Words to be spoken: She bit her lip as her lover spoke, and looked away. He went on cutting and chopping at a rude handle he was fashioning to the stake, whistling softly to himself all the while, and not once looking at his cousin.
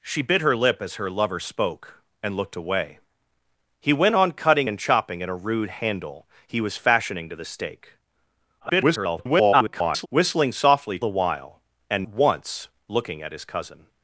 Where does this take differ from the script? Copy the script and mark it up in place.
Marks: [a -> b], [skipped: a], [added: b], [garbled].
She bit her lip as her lover spoke, and looked away. He went on cutting and chopping at a rude handle he was fashioning to the stake, [garbled] whistling softly [skipped: to himself all] the while, and [skipped: not] once looking at his cousin.